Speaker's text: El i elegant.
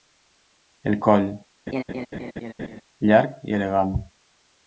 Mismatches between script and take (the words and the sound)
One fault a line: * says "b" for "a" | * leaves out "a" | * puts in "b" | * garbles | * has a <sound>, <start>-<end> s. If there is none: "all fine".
* puts in "coll llarg"
* has a laugh, 1.7-2.8 s